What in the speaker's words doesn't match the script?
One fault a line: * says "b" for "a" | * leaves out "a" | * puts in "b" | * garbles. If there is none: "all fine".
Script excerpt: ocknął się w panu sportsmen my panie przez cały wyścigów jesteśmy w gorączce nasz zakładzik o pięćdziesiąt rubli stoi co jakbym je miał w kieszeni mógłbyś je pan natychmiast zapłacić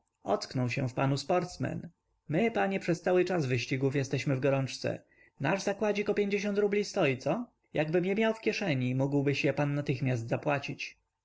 * puts in "czas"